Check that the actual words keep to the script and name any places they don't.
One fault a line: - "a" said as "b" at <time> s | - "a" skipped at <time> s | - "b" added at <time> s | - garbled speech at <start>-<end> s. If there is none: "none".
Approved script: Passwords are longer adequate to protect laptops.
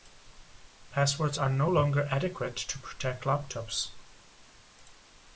- "no" added at 1.5 s